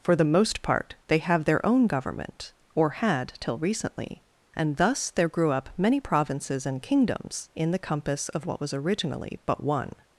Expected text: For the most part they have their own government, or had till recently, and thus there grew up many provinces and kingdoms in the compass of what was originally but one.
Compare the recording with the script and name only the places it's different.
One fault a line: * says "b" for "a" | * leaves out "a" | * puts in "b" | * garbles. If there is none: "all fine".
all fine